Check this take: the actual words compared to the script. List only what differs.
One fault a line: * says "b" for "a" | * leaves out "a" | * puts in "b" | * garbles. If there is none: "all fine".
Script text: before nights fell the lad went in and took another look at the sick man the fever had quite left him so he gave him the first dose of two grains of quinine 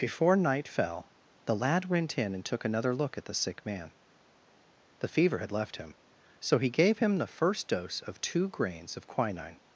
* says "night" for "nights"
* leaves out "quite"